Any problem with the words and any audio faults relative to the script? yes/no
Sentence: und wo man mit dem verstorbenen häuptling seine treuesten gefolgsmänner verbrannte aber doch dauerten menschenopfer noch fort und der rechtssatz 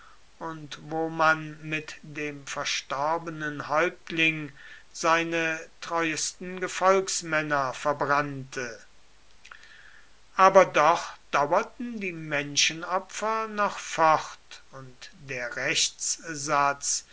yes